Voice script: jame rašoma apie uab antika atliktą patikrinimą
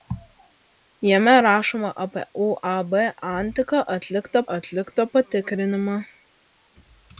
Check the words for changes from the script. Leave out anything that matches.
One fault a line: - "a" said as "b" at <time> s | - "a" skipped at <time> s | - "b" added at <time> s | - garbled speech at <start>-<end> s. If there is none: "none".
- "atliktą" added at 4.6 s